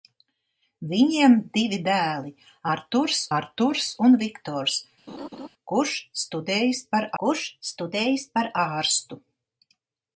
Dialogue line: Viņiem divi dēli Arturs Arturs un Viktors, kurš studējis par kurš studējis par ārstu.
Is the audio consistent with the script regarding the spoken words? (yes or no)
yes